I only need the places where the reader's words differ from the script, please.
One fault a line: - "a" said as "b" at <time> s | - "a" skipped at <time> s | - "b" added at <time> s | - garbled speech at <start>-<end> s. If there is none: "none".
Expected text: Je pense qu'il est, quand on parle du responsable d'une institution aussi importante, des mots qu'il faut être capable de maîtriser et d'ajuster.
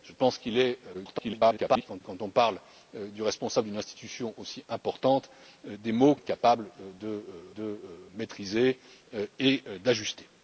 - garbled speech at 0.9-2.0 s
- "qu'il faut" skipped at 6.1 s
- "de" added at 7.6 s